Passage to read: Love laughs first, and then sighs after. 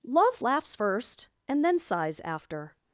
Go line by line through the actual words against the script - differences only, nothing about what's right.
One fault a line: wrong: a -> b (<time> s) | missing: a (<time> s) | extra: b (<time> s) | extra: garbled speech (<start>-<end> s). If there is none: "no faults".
no faults